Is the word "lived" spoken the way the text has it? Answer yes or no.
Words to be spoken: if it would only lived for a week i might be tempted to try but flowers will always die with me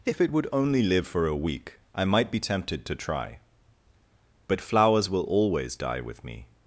no